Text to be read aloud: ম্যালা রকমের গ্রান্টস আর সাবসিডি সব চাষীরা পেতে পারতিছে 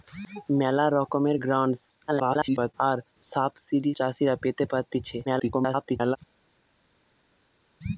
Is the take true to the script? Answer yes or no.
no